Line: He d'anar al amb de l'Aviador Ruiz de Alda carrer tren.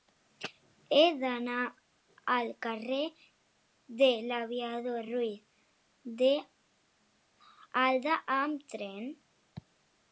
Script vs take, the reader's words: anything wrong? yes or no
yes